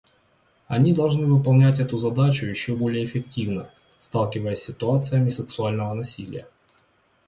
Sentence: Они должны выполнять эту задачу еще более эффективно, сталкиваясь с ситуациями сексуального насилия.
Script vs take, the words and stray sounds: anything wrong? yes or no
no